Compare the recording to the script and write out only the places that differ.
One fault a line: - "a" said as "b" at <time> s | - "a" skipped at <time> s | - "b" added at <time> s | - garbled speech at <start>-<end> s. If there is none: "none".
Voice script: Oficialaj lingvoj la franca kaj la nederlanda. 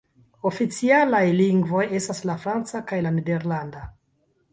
- "estas" added at 2.0 s